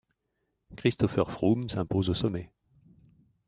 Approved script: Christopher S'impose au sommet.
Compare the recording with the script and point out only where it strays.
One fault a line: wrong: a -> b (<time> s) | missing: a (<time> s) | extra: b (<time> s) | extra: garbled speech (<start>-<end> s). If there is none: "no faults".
extra: Froome (1.3 s)